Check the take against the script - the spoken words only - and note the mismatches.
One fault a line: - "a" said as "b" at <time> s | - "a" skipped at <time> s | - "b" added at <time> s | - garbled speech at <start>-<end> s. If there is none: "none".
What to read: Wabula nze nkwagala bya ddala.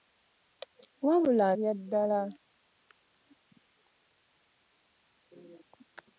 - "nze nkwagala" skipped at 1.5 s